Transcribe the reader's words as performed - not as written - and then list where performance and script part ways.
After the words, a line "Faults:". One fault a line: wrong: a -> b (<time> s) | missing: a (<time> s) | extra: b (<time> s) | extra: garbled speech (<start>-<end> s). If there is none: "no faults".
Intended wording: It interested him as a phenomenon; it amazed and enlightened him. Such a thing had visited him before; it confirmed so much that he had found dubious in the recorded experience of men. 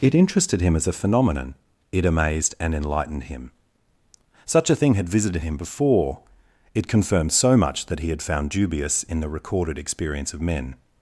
It interested him as a phenomenon; it amazed and enlightened him. Such a thing had visited him before; it confirmed so much that he had found dubious in the recorded experience of men.
Faults:
no faults